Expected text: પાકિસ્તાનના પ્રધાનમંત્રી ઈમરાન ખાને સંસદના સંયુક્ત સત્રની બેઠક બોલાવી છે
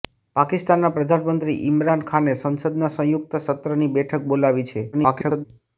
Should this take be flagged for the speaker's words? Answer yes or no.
yes